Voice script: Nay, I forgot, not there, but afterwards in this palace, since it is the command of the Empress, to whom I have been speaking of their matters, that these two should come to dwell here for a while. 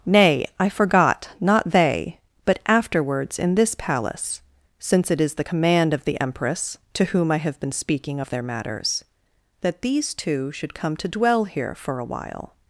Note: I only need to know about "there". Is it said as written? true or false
false